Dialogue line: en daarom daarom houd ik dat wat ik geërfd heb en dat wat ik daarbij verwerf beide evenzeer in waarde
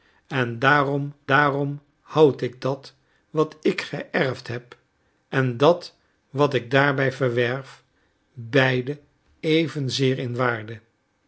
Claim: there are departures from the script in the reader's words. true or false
false